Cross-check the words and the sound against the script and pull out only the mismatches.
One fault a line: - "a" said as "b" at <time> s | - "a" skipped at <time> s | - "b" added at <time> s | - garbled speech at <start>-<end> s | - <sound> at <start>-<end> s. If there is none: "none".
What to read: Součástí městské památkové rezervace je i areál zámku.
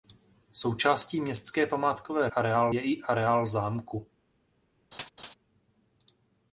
- "rezervace" said as "areál" at 2.3 s
- laugh at 4.9-5.3 s